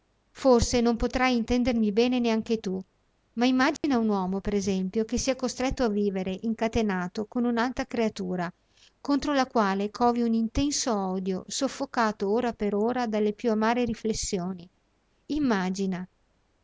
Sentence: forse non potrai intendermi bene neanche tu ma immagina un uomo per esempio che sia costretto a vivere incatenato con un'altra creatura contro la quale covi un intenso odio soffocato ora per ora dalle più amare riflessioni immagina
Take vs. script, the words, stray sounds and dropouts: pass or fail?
fail